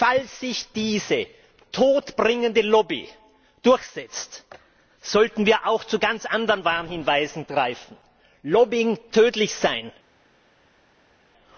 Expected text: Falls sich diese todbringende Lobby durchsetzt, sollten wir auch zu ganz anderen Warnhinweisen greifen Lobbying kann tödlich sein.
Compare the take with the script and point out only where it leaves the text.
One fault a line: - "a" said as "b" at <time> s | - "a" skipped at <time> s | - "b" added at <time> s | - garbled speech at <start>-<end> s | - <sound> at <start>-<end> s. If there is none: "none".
- "kann" skipped at 9.0 s